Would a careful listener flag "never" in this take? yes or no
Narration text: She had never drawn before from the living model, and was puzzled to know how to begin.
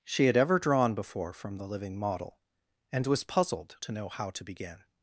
yes